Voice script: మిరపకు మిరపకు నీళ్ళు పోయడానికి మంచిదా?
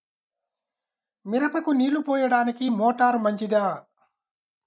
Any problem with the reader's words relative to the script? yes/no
yes